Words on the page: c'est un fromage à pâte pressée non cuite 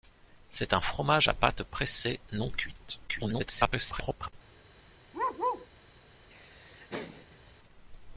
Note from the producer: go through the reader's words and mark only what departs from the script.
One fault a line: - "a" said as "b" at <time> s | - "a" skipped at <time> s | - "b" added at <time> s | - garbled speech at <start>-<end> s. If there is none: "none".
- garbled speech at 3.1-4.3 s